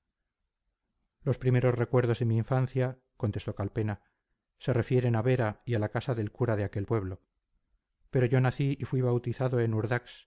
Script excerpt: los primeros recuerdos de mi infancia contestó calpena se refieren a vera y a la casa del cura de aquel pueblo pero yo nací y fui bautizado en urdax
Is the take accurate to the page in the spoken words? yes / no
yes